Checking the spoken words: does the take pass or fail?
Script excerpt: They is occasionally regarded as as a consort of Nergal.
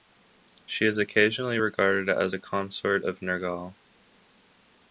fail